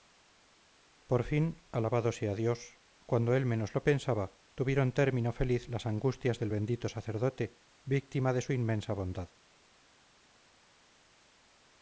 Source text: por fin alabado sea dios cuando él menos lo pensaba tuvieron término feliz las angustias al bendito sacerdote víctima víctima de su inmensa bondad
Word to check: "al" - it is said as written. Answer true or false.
false